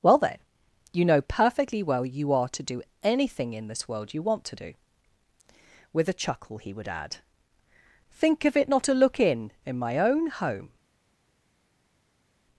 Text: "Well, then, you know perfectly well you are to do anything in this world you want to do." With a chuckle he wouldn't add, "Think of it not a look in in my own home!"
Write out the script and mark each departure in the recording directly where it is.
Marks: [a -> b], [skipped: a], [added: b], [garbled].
"Well, then, you know perfectly well you are to do anything in this world you want to do." With a chuckle he [wouldn't -> would] add, "Think of it not a look in in my own home!"